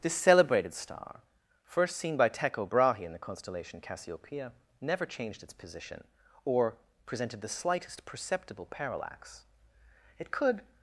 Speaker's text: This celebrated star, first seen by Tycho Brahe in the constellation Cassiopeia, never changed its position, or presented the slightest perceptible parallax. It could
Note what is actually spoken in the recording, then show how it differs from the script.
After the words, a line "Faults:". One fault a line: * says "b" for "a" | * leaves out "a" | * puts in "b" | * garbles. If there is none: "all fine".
This celebrated star, first seen by Tycho Brahe in the constellation Cassiopeia, never changed its position, or presented the slightest perceptible parallax. It could
Faults:
all fine